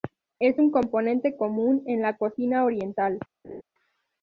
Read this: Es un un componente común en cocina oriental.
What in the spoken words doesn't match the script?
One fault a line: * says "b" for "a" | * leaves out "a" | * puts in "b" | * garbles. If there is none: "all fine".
* leaves out "un"
* puts in "la"